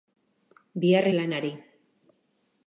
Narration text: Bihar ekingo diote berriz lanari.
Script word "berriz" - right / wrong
wrong